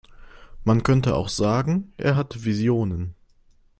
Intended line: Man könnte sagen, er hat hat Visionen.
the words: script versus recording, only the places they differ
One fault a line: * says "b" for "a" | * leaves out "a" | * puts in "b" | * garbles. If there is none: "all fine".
* puts in "auch"
* leaves out "hat"